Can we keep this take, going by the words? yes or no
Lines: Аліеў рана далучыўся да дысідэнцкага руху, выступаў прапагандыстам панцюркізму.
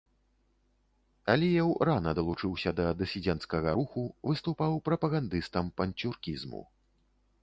yes